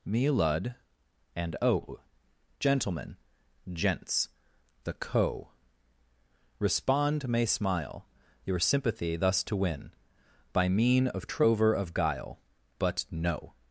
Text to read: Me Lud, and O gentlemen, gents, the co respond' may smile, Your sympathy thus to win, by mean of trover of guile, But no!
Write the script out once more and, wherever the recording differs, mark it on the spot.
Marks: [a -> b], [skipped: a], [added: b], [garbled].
Me Lud, and O gentlemen, gents, the co respond' may smile, Your sympathy thus to win, by mean of trover of guile, But no!